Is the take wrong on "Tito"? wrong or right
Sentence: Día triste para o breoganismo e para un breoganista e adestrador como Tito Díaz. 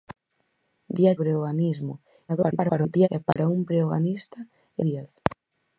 wrong